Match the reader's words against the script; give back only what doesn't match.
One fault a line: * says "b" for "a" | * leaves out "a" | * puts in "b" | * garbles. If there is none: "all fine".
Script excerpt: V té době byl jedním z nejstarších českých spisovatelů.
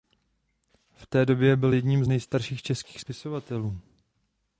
all fine